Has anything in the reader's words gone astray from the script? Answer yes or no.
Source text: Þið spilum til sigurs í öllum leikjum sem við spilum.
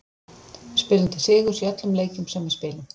yes